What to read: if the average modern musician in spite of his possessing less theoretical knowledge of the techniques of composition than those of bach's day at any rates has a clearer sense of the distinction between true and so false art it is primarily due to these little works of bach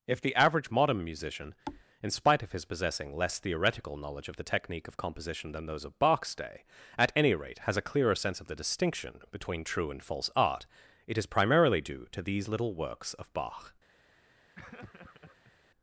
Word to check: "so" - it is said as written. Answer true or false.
false